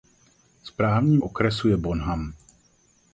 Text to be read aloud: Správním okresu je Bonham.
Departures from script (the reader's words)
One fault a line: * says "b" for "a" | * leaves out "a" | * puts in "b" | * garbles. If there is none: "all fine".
all fine